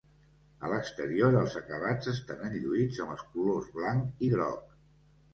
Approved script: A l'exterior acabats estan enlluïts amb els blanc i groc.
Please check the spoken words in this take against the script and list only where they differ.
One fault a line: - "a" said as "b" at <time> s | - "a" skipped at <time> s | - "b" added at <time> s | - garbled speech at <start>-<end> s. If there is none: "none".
- "els" added at 1.4 s
- "colors" added at 3.3 s